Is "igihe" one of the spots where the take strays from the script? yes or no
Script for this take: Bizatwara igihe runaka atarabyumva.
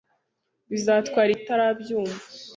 yes